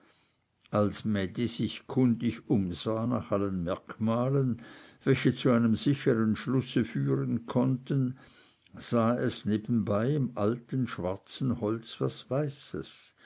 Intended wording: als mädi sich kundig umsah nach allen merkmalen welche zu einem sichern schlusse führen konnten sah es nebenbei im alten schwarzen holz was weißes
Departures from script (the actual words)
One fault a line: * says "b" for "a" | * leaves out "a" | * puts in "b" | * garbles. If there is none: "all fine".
all fine